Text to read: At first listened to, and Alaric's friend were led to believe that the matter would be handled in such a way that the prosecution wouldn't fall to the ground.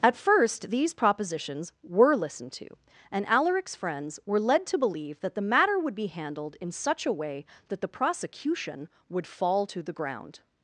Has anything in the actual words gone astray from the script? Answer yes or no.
yes